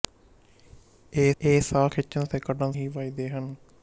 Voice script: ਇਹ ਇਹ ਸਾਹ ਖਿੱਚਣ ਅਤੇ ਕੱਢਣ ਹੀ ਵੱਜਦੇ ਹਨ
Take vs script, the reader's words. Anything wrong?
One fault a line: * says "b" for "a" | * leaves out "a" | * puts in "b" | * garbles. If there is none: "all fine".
all fine